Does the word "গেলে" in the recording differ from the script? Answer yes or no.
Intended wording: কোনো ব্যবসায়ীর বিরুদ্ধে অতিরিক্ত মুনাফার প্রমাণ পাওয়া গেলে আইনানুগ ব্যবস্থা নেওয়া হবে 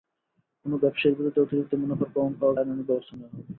yes